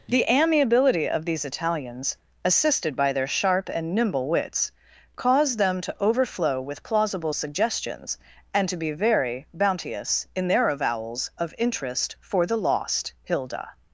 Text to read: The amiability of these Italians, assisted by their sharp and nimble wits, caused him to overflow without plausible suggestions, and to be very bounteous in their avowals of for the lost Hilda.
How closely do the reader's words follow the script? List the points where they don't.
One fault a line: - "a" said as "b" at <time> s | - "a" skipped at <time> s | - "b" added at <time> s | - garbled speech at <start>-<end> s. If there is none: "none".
- "him" said as "them" at 5.6 s
- "without" said as "with" at 6.6 s
- "interest" added at 11.6 s